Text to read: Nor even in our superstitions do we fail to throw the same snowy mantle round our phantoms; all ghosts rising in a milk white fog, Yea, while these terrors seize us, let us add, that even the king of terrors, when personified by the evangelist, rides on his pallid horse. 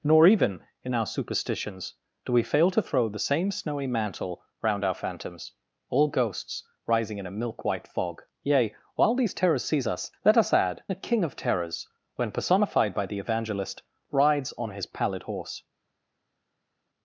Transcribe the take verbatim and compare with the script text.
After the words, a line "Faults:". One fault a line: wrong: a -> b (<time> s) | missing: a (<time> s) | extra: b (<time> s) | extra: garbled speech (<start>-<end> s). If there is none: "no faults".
Nor even in our superstitions do we fail to throw the same snowy mantle round our phantoms; all ghosts rising in a milk white fog, Yea, while these terrors seize us, let us add, the king of terrors, when personified by the evangelist, rides on his pallid horse.
Faults:
missing: that even (10.8 s)